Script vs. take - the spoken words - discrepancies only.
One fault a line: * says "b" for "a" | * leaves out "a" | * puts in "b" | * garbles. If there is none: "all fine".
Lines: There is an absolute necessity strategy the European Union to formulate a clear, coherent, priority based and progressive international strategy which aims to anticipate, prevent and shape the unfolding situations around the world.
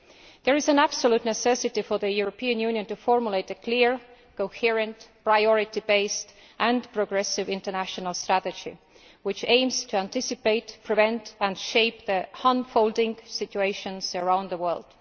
* says "for" for "strategy"